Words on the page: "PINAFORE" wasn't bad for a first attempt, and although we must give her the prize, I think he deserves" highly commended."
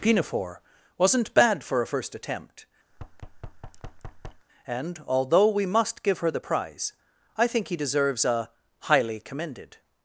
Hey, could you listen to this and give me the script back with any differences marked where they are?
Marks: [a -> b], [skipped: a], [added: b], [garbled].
"PINAFORE" wasn't bad for a first attempt, and although we must give her the prize, I think he deserves" [added: a] highly commended."